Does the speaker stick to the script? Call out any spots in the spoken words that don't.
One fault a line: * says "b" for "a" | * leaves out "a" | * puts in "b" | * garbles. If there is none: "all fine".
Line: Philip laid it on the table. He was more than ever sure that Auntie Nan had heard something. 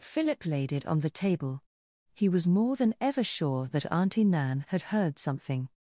all fine